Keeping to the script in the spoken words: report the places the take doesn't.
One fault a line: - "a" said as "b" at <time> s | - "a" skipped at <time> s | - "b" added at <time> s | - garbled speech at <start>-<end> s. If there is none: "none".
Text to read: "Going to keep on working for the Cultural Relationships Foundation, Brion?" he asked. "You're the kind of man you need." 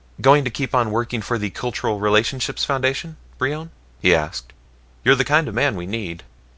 - "you" said as "we" at 5.7 s